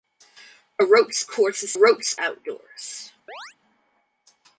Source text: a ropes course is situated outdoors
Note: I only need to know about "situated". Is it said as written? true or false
false